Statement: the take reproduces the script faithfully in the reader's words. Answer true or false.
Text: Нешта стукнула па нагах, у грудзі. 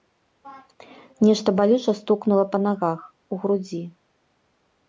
false